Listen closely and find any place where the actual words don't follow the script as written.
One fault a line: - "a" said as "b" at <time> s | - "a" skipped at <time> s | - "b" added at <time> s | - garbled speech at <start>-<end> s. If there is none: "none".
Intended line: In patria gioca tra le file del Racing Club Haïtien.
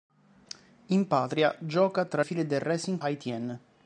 - "le" skipped at 2.2 s
- "Club" skipped at 3.0 s